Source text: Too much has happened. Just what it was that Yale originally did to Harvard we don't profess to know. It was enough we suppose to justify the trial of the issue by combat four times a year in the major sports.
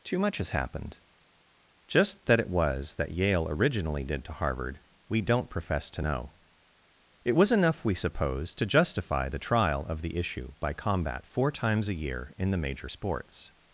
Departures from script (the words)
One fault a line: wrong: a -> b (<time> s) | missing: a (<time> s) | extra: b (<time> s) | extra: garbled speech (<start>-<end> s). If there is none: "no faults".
wrong: what -> that (2.2 s)